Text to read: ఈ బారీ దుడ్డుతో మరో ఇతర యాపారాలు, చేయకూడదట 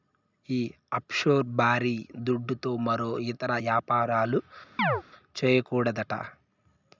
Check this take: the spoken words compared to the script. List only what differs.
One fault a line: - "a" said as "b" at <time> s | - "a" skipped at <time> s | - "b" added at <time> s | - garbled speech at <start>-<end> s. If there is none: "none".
- "ఆఫ్షోర్" added at 0.9 s